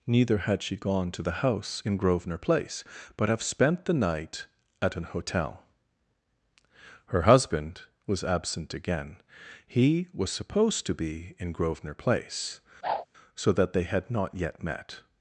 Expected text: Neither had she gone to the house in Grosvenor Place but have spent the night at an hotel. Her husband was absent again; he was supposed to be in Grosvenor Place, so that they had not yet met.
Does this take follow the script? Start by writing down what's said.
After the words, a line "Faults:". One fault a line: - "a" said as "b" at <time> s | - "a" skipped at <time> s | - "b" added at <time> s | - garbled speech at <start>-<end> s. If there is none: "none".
Neither had she gone to the house in Grosvenor Place but have spent the night at an hotel. Her husband was absent again; he was supposed to be in Grosvenor Place, so that they had not yet met.
Faults:
none